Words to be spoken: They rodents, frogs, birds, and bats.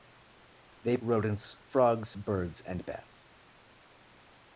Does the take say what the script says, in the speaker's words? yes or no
yes